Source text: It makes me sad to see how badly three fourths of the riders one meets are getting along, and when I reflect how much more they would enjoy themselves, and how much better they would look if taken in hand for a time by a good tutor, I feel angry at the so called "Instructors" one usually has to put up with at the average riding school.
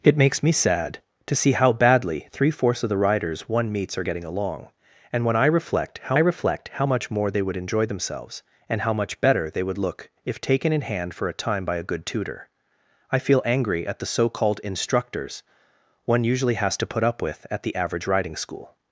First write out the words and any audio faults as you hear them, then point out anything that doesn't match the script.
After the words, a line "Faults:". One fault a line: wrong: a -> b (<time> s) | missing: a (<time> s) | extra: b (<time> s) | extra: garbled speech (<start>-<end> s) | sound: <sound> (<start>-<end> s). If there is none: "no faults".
It makes me sad to see how badly three fourths of the riders one meets are getting along, and when I reflect how reflect how much more they would enjoy themselves, and how much better they would look if taken in hand for a time by a good tutor, I feel angry at the so called "Instructors" one usually has to put up with at the average riding school.
Faults:
extra: reflect how (6.2 s)